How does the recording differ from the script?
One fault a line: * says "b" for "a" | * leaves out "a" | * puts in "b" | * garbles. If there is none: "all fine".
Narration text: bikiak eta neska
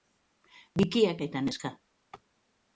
all fine